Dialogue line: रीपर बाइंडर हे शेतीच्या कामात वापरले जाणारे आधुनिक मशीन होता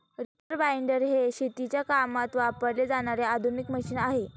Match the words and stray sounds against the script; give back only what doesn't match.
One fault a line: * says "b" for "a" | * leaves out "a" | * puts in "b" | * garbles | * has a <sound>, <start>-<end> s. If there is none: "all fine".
* has a dropout, 0.4-0.5 s
* says "आहे" for "होता"